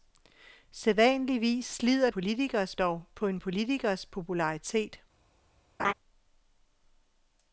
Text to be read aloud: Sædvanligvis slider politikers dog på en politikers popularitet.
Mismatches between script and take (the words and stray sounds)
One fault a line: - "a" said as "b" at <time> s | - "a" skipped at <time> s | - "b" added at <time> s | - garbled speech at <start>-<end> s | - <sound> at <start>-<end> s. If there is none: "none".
- laugh at 5.8-5.9 s